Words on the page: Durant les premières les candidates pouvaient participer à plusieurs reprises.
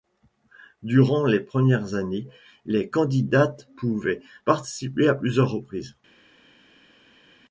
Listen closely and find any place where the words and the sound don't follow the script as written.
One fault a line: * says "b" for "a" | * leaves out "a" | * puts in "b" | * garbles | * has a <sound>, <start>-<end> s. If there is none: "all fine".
* puts in "années"